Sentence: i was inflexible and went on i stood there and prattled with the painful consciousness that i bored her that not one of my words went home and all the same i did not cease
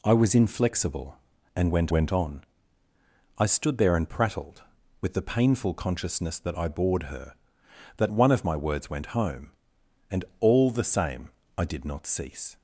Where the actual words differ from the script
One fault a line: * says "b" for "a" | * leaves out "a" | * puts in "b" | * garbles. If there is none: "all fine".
* puts in "went"
* leaves out "not"